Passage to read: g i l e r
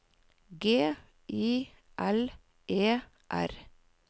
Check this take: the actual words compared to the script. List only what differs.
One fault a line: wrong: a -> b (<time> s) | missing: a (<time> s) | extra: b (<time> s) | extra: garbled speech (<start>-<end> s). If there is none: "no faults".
no faults